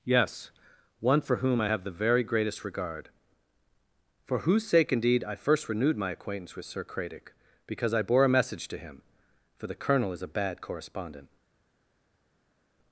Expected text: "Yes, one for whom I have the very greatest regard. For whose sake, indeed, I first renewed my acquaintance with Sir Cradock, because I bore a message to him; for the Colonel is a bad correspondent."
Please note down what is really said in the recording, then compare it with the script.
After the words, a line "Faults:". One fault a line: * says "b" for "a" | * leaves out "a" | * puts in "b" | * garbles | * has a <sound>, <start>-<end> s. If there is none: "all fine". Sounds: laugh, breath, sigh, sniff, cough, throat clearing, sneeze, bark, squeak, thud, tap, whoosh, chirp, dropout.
"Yes, one for whom I have the very greatest regard. For whose sake, indeed, I first renewed my acquaintance with Sir Cradock, because I bore a message to him; for the Colonel is a bad correspondent."
Faults:
all fine